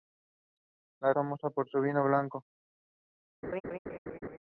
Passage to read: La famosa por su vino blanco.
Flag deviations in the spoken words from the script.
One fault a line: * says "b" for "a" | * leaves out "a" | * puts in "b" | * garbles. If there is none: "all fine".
all fine